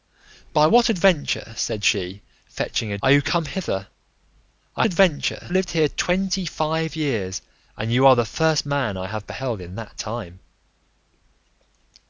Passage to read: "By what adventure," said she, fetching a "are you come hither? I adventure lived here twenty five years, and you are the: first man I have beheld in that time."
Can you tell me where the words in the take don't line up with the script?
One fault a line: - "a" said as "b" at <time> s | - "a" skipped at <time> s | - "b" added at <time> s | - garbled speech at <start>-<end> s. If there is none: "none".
none